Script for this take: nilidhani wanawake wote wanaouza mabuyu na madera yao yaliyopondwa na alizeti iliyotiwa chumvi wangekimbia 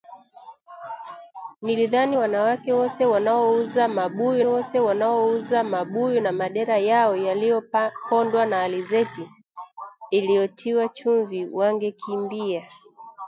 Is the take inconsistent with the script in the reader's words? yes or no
yes